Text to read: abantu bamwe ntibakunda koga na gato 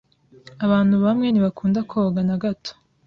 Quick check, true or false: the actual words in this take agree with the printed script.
true